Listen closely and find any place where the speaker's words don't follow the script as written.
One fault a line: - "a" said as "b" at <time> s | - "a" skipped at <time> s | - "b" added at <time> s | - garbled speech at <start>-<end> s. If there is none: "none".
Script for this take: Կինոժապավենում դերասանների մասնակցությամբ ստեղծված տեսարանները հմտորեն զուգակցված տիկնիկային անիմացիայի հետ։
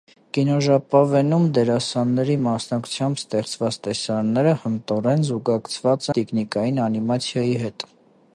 none